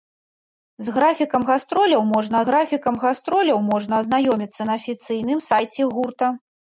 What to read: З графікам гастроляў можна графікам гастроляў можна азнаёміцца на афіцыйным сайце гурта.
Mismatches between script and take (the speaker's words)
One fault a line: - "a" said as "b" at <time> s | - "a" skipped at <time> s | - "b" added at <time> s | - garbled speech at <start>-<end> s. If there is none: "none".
none